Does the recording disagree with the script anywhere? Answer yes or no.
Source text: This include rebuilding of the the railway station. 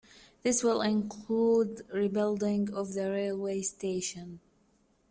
yes